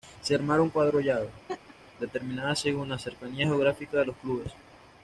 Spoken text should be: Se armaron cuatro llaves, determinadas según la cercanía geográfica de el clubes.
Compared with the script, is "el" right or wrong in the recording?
wrong